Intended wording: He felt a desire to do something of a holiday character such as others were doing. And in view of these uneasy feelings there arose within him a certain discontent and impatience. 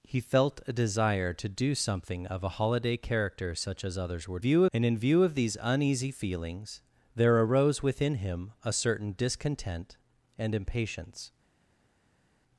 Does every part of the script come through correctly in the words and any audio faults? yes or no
no